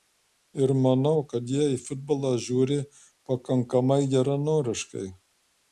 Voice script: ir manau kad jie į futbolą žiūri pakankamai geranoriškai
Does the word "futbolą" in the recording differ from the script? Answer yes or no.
no